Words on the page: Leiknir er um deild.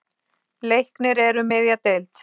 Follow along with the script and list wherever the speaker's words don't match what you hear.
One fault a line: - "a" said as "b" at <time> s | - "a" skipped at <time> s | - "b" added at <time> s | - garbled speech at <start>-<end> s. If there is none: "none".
- "miðja" added at 1.5 s